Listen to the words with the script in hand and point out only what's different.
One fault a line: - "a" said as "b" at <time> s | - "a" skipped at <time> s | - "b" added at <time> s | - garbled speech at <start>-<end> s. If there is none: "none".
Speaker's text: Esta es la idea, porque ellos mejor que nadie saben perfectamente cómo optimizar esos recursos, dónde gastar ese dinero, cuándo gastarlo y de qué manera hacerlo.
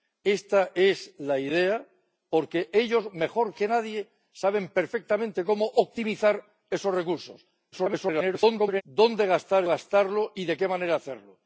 - garbled speech at 7.7-8.8 s
- "ese dinero cuándo" skipped at 9.6 s